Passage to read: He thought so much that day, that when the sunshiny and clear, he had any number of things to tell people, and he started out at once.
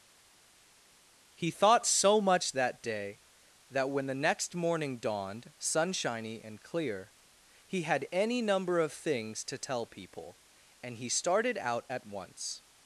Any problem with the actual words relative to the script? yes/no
yes